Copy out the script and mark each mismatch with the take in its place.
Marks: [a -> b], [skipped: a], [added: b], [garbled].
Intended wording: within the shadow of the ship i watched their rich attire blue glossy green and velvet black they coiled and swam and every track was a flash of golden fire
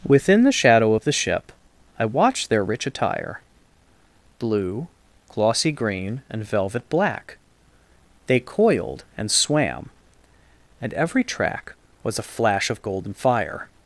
within the shadow of the ship i watched their rich attire blue glossy green and velvet black they coiled and swam and every track was a flash of golden fire